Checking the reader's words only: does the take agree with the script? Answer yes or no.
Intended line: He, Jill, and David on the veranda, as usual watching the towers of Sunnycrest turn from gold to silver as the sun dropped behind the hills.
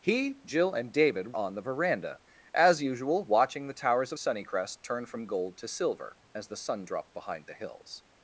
yes